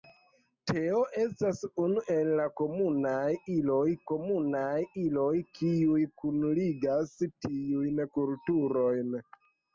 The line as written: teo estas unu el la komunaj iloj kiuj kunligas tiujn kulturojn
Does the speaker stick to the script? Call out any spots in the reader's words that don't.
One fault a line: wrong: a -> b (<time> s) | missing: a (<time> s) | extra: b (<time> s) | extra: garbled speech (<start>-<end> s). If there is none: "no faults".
extra: komunaj iloj (4.1 s)